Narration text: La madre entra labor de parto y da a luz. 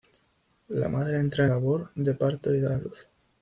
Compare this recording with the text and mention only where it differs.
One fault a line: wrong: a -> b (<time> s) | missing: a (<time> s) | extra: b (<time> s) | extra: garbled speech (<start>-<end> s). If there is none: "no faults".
no faults